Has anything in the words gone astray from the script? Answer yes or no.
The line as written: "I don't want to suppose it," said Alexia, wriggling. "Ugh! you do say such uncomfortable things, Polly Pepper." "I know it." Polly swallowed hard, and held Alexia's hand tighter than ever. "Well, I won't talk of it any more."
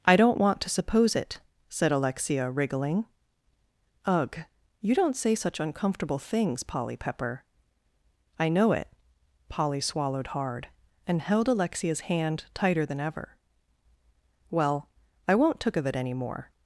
yes